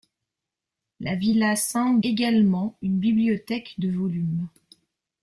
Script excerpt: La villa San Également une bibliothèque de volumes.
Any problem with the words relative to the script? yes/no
no